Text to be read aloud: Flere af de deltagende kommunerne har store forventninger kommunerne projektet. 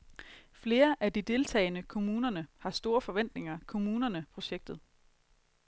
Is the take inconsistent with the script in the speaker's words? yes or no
no